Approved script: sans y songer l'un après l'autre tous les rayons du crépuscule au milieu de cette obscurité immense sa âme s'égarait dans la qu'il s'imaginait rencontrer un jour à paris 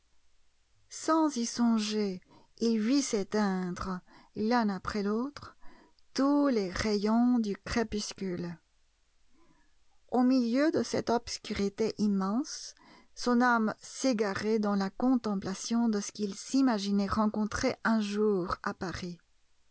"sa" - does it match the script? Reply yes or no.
no